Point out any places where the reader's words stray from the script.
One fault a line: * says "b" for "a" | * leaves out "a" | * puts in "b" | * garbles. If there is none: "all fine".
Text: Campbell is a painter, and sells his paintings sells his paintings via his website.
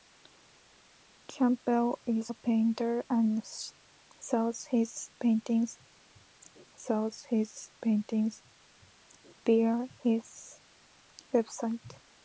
all fine